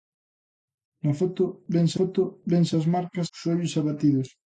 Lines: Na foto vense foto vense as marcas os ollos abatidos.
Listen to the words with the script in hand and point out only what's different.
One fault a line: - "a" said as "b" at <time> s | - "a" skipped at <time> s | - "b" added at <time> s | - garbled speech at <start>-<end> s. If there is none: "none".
none